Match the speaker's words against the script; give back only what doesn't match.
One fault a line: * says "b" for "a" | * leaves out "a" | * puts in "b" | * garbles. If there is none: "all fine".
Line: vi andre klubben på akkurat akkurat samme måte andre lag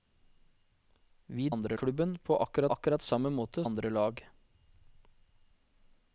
all fine